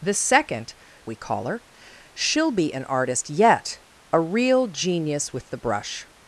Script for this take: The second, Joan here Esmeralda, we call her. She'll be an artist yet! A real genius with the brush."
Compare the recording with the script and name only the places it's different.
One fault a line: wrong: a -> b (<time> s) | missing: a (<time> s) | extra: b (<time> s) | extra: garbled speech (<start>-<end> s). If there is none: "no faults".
missing: Joan here Esmeralda (0.7 s)